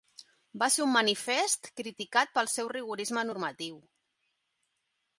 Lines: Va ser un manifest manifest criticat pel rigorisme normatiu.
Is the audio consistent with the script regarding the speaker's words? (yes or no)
no